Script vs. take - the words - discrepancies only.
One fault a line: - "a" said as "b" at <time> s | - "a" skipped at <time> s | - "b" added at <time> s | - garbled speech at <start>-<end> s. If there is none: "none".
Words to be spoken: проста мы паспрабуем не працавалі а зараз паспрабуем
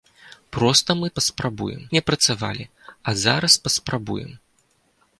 none